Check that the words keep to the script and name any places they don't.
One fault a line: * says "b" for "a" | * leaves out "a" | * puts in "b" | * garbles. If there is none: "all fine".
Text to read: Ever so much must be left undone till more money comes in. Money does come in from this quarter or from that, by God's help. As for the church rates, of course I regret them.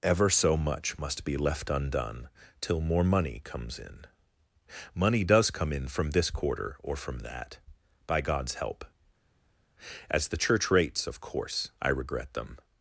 * leaves out "for"